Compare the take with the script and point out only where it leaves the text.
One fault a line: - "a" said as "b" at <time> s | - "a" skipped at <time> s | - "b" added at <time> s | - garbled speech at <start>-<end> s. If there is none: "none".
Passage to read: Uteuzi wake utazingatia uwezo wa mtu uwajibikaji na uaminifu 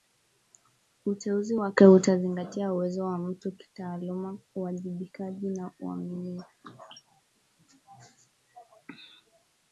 - "kitaaluma" added at 3.5 s